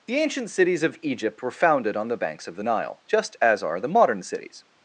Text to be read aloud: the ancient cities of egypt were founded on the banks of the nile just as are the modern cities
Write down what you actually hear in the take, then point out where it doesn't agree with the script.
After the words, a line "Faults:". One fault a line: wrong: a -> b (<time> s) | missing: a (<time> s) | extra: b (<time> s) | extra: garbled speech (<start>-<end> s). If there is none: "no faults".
the ancient cities of egypt were founded on the banks of the nile just as are the modern cities
Faults:
no faults